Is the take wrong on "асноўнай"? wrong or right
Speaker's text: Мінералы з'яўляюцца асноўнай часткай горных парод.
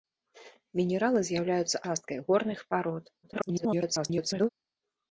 wrong